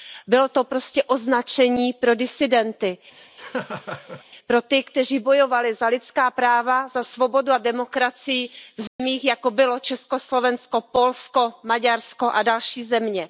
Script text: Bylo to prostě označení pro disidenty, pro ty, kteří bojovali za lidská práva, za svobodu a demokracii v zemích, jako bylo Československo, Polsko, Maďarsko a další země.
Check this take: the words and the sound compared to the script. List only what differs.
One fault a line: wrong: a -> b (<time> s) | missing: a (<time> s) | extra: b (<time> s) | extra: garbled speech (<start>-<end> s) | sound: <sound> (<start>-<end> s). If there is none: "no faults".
sound: laugh (3.1-4.2 s)
sound: dropout (8.9-9.0 s)